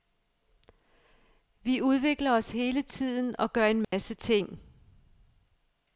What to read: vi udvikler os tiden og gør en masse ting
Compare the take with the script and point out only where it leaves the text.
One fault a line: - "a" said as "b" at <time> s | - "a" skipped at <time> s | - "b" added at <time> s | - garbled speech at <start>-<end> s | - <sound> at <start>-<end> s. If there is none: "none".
- "hele" added at 2.5 s
- dropout at 3.8-3.9 s